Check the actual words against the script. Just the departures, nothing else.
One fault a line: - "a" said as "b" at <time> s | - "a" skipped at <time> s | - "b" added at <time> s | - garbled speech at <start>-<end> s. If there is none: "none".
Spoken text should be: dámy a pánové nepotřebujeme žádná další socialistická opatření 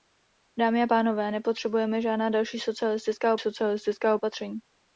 - "socialistická" added at 3.4 s